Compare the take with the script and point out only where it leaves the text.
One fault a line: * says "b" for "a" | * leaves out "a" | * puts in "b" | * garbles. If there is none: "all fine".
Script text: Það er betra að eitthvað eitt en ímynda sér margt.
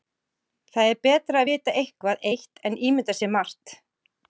* puts in "vita"